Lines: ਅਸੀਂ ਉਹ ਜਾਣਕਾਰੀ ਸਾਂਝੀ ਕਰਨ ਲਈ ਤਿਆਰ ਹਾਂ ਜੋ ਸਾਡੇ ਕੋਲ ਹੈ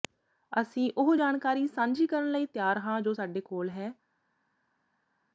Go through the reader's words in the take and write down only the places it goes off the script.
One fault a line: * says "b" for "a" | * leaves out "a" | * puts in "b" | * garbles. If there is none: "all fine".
all fine